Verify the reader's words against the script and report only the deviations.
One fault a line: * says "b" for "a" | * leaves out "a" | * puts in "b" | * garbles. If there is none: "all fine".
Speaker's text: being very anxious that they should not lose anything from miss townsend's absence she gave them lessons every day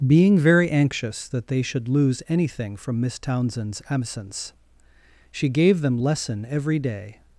* leaves out "not"
* says "lesson" for "lessons"